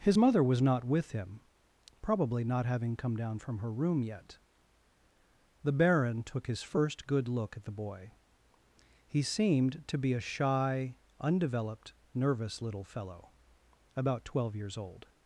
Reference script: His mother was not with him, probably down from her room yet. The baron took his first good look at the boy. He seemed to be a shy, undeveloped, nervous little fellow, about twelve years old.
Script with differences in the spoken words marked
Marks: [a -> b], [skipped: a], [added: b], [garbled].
His mother was not with him, probably [added: not having come] down from her room yet. The baron took his first good look at the boy. He seemed to be a shy, undeveloped, nervous little fellow, about twelve years old.